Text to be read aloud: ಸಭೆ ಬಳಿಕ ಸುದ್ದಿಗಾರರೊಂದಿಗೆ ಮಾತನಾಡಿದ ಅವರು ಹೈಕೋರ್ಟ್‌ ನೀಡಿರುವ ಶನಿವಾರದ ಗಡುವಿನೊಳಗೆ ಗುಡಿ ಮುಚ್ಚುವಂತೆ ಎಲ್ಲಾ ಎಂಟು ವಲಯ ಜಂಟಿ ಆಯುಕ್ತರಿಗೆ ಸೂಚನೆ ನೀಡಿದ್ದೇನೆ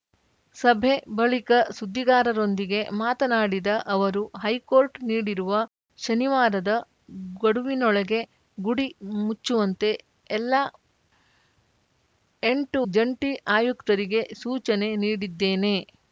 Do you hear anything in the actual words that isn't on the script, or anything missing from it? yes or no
yes